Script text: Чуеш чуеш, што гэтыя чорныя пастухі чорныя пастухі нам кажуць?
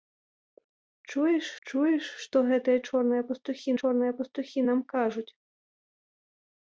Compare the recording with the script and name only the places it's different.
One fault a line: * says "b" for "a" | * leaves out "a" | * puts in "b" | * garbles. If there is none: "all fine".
all fine